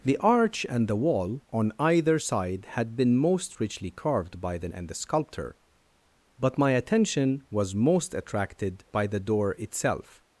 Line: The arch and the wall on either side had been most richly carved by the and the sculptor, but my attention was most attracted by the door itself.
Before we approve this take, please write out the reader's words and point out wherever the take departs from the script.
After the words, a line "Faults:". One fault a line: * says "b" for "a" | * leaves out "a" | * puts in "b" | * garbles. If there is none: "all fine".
The arch and the wall on either side had been most richly carved by the and the sculptor, but my attention was most attracted by the door itself.
Faults:
all fine